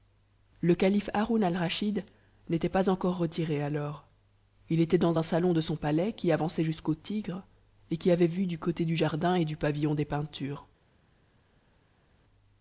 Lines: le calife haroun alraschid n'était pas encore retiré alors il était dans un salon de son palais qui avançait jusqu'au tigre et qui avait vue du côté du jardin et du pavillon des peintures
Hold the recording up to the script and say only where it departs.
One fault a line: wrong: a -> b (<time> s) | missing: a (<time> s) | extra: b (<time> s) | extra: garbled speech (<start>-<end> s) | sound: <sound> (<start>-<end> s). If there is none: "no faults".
no faults